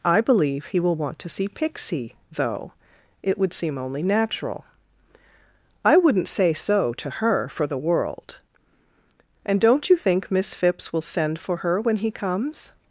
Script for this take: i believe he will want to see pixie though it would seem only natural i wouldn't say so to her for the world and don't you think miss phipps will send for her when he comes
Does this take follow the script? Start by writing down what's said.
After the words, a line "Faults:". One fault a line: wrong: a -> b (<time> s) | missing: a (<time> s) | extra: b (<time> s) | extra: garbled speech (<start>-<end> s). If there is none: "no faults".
i believe he will want to see pixie though it would seem only natural i wouldn't say so to her for the world and don't you think miss phipps will send for her when he comes
Faults:
no faults